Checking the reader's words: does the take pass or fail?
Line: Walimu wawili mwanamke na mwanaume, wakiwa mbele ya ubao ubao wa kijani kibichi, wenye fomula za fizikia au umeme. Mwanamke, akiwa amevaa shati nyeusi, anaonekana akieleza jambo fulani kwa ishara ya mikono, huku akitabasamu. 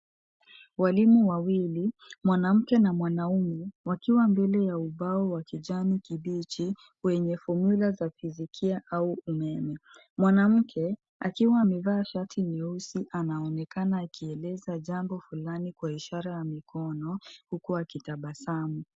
fail